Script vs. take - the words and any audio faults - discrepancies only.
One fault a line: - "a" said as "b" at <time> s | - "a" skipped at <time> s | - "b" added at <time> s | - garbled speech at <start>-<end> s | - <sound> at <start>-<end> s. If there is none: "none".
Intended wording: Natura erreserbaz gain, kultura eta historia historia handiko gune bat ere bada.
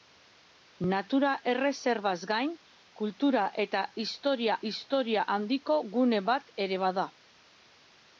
none